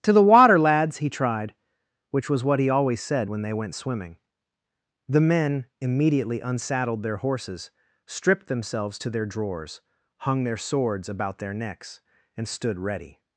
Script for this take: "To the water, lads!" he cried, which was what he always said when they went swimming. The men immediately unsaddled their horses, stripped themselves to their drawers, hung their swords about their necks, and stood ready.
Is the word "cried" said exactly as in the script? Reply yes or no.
no